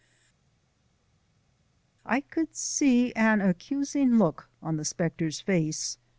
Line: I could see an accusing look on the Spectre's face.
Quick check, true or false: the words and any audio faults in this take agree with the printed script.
true